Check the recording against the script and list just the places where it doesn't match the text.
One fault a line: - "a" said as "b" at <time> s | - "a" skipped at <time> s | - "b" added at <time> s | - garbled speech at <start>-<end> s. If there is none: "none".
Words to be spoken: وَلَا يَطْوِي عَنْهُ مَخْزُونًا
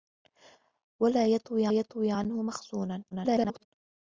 - "يَطْوِي" added at 1.7 s
- garbled speech at 3.1-3.7 s